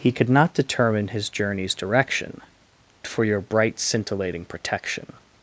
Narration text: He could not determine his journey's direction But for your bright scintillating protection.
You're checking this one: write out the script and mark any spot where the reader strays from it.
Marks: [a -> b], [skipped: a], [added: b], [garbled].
He could not determine his journey's direction [skipped: But] for your bright scintillating protection.